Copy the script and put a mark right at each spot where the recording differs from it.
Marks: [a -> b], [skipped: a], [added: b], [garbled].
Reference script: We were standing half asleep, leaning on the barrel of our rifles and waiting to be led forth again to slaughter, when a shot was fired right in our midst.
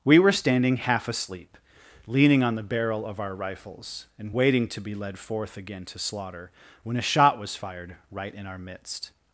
We were standing half asleep, leaning on the barrel of our rifles and waiting to be led forth again to slaughter, when a shot was fired right in our midst.